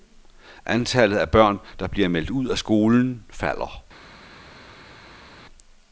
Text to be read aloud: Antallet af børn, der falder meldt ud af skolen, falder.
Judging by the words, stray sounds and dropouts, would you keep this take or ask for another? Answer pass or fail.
fail